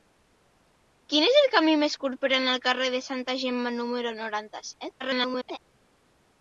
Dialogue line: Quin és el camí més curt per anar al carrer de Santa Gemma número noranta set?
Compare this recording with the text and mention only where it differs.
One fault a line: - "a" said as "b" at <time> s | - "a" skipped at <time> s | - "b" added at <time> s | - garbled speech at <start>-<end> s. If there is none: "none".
- garbled speech at 5.0-5.6 s